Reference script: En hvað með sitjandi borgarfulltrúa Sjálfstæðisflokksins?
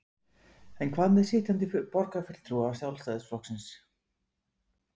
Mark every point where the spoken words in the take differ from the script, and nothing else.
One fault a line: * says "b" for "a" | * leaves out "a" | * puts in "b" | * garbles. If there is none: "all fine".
all fine